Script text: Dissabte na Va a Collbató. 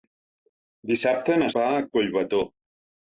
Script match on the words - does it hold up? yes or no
yes